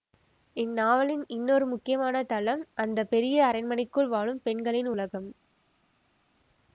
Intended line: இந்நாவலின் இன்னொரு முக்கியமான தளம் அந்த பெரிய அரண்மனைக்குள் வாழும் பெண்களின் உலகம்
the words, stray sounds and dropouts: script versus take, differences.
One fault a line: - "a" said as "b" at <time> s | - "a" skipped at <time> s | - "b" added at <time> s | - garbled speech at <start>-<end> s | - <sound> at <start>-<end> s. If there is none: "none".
none